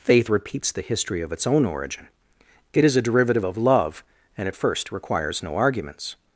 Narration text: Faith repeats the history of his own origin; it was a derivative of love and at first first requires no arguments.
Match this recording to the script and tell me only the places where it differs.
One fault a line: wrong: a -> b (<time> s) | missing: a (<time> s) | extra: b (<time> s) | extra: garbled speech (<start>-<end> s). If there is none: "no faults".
wrong: his -> its (1.3 s)
wrong: was -> is (2.9 s)
missing: first (4.9 s)